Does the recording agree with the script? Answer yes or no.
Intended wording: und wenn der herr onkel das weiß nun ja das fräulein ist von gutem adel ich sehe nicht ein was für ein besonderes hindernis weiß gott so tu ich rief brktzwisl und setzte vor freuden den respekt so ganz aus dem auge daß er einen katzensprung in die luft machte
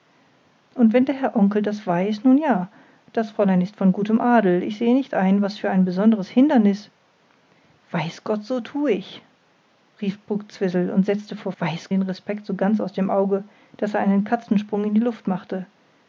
no